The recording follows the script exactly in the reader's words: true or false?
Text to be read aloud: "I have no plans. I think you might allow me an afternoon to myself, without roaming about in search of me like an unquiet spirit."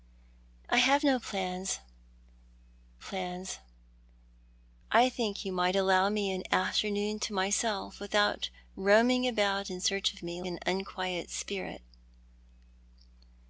false